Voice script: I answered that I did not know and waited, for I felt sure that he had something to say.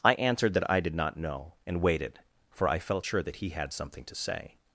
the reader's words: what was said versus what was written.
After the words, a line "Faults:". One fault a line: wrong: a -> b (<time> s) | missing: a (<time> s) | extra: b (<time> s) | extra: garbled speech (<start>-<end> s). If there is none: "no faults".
I answered that I did not know and waited, for I felt sure that he had something to say.
Faults:
no faults